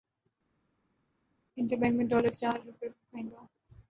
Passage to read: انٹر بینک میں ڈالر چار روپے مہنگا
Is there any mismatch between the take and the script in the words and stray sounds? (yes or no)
no